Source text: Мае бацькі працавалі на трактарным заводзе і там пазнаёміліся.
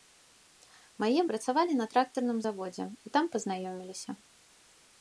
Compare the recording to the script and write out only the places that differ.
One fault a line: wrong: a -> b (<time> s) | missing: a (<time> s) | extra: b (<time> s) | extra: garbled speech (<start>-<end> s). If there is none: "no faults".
missing: бацькі (1.2 s)